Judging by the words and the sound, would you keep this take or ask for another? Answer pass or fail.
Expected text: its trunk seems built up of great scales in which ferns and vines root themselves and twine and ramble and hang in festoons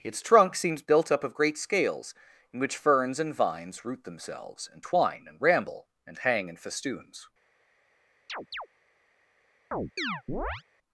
fail